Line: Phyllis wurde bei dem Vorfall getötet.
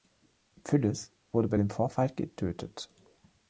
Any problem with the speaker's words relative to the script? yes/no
no